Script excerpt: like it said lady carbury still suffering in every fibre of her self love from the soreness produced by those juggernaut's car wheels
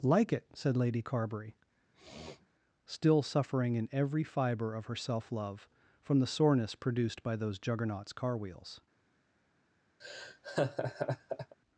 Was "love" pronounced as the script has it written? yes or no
yes